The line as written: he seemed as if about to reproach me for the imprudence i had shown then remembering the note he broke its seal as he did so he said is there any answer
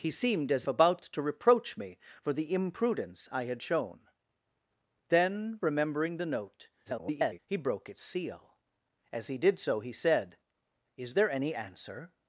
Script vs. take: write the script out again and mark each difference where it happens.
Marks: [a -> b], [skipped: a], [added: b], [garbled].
he seemed as [skipped: if] about to reproach me for the imprudence i had shown then remembering the note [garbled] he broke its seal as he did so he said is there any answer